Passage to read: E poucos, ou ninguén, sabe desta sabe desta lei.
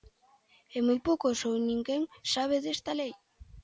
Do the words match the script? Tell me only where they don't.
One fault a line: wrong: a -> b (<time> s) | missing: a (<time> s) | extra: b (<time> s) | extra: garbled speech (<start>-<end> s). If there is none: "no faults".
extra: moi (0.9 s)
missing: sabe desta (2.9 s)